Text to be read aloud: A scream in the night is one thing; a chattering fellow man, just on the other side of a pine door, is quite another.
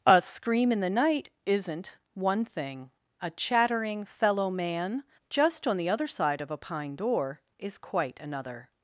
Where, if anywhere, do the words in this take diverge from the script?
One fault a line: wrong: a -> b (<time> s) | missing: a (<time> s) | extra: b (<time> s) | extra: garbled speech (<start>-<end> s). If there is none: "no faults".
wrong: is -> isn't (1.4 s)